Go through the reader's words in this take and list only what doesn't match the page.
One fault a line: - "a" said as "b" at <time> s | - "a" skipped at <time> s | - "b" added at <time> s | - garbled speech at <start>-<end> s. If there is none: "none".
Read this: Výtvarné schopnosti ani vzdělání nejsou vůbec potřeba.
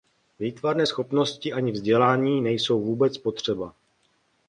none